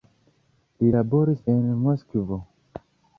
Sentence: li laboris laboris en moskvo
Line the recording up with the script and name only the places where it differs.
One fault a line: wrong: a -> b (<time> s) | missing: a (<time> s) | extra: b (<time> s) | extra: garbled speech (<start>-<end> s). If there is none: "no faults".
missing: laboris (1.4 s)